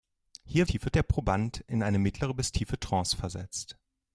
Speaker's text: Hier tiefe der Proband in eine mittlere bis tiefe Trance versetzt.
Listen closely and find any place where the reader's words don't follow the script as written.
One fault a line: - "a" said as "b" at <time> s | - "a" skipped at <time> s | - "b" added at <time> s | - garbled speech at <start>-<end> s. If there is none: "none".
none